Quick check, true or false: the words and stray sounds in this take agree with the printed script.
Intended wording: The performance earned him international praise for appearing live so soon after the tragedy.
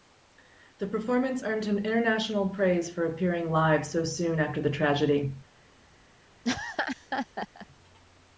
false